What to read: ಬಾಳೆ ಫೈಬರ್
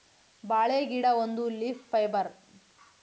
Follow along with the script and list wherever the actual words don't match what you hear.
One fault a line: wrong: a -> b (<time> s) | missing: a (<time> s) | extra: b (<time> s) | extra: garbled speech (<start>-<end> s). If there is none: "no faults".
extra: ಗಿಡ ಒಂದು ಲೀಫ್ (0.8 s)